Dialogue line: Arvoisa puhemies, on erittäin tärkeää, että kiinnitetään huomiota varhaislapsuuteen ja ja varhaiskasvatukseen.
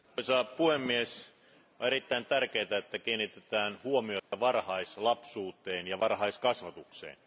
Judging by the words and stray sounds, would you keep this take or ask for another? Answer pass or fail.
fail